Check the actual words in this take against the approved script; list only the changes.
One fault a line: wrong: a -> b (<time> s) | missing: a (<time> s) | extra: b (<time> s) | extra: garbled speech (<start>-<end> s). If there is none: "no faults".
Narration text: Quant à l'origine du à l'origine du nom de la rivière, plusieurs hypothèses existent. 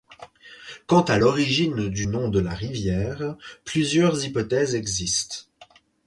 missing: à l'origine du (2.1 s)